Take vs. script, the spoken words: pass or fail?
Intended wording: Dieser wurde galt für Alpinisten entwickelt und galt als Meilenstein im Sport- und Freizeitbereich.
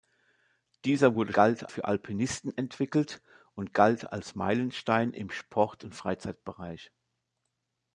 pass